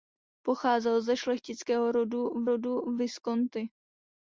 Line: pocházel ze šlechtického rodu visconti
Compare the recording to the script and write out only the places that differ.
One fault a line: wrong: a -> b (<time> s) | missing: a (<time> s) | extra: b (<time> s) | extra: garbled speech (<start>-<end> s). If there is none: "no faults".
extra: rodu (2.4 s)